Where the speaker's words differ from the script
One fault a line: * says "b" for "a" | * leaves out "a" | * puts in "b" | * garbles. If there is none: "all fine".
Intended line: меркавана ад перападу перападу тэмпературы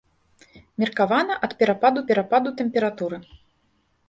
all fine